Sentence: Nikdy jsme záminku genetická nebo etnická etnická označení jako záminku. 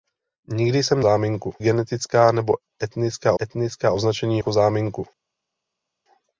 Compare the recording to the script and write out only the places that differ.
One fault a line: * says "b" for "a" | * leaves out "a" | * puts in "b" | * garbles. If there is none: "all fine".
all fine